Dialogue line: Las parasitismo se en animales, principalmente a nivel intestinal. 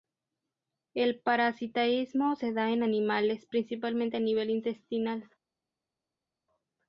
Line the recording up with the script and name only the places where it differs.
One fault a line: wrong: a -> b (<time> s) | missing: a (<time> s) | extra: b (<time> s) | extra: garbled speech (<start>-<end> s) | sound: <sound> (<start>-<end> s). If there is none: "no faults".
wrong: Las -> El (0.9 s)
extra: da (2.5 s)